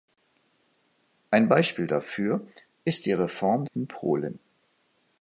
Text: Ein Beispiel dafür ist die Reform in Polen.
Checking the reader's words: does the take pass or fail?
pass